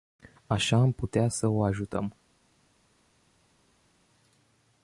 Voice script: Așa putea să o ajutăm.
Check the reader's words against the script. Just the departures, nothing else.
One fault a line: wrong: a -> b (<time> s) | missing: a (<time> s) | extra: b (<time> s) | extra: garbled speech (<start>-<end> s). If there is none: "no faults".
extra: am (0.8 s)